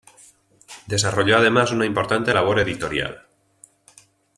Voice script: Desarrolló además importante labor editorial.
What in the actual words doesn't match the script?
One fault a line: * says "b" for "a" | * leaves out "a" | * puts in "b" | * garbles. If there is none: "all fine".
* puts in "una"